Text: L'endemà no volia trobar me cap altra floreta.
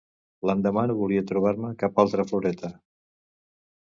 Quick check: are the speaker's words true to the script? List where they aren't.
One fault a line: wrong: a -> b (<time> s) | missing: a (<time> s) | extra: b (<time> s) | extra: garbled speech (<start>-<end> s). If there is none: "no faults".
no faults